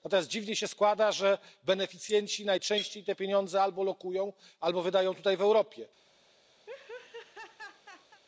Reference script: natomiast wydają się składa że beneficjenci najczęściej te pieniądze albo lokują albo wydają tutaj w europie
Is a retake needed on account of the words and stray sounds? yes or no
yes